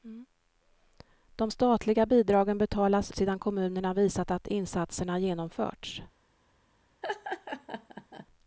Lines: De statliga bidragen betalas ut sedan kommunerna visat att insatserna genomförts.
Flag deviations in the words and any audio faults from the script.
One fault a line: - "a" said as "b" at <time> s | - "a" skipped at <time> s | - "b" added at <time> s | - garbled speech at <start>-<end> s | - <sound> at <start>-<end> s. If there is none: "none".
- "ut" skipped at 3.1 s
- laugh at 7.0-8.3 s